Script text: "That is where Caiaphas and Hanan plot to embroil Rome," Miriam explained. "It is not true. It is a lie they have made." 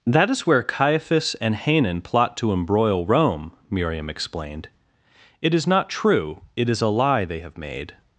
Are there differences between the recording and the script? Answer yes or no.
no